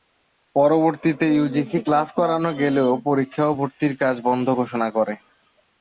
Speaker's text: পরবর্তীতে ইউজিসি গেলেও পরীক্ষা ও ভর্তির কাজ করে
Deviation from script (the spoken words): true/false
true